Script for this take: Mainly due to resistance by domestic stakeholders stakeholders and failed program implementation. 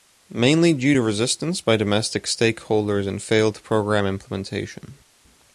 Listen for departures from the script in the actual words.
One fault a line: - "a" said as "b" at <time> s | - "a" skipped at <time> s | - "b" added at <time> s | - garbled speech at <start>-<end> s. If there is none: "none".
- "stakeholders" skipped at 3.1 s